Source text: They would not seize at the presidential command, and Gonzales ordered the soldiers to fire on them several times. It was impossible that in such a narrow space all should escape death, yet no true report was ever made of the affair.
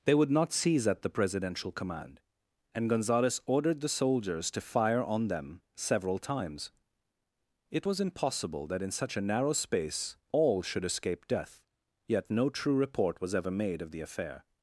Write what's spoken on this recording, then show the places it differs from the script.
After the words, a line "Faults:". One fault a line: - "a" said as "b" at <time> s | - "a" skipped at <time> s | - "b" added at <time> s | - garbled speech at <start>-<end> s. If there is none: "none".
They would not seize at the presidential command, and Gonzales ordered the soldiers to fire on them several times. It was impossible that in such a narrow space all should escape death, yet no true report was ever made of the affair.
Faults:
none